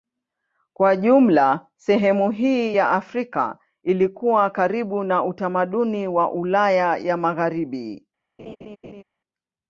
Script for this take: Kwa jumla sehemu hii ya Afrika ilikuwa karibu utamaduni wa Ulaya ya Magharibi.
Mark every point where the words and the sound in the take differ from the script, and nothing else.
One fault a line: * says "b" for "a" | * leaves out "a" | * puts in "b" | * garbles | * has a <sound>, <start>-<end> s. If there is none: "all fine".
* puts in "na"
* has a laugh, 8.4-9.0 s